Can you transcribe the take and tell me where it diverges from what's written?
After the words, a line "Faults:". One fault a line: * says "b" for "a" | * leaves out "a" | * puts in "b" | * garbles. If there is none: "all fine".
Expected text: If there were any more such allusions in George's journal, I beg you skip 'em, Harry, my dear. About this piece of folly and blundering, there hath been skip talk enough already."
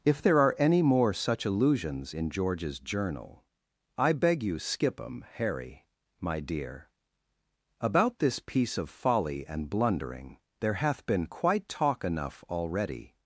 If there are any more such allusions in George's journal, I beg you skip 'em, Harry, my dear. About this piece of folly and blundering, there hath been quite talk enough already."
Faults:
* says "are" for "were"
* says "quite" for "skip"